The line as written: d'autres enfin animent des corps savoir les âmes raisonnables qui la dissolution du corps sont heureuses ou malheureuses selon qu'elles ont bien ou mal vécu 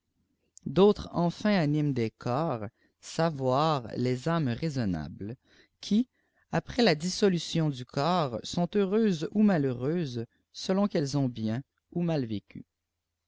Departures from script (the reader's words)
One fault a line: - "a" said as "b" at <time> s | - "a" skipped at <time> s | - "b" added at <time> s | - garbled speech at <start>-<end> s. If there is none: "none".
- "après" added at 6.5 s